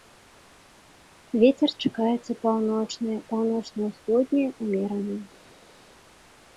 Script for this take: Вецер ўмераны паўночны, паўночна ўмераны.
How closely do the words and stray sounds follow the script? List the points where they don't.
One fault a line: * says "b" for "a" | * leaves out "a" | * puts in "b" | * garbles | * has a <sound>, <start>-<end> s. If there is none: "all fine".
* says "чакаецца" for "ўмераны"
* puts in "ўсходні"